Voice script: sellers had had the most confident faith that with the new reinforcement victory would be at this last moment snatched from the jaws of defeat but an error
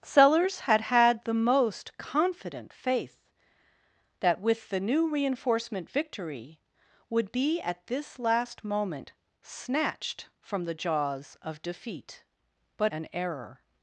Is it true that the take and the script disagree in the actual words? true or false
false